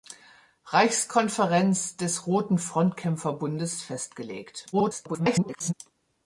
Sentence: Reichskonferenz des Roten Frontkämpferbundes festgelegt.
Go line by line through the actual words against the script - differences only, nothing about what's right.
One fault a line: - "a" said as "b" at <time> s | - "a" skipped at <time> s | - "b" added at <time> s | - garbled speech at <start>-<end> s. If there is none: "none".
- garbled speech at 4.7-5.7 s